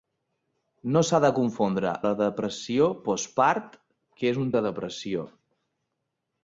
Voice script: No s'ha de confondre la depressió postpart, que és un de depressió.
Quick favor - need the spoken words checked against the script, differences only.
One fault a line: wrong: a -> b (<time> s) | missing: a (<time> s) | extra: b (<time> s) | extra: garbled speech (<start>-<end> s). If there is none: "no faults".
no faults